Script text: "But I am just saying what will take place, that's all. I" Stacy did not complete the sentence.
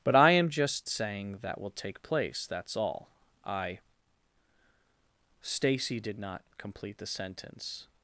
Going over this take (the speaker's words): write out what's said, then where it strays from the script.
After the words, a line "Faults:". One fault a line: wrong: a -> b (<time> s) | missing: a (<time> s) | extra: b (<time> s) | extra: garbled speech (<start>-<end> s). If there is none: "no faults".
"But I am just saying that will take place, that's all. I" Stacy did not complete the sentence.
Faults:
wrong: what -> that (1.4 s)